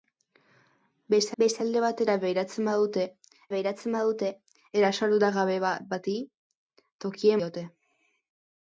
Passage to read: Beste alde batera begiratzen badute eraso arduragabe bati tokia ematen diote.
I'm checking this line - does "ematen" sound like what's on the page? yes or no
no